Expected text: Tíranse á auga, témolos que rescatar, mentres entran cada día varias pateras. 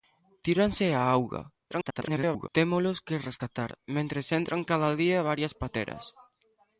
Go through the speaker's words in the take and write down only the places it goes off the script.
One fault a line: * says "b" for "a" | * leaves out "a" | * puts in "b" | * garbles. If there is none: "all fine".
* garbles